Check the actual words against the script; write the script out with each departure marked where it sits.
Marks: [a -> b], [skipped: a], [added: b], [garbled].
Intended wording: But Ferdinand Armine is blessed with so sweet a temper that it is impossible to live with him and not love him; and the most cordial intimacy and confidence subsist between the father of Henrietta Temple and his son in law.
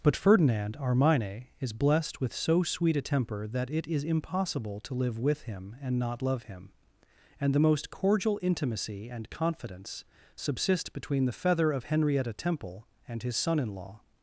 But Ferdinand Armine is blessed with so sweet a temper that it is impossible to live with him and not love him; and the most cordial intimacy and confidence subsist between the [father -> feather] of Henrietta Temple and his son in law.